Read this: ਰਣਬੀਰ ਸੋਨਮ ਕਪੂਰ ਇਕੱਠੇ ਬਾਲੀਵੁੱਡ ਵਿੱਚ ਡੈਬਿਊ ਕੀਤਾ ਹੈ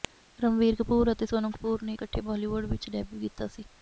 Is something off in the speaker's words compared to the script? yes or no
yes